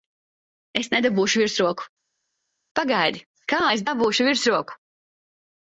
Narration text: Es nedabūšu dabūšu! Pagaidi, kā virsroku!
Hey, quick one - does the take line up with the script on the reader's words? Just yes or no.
no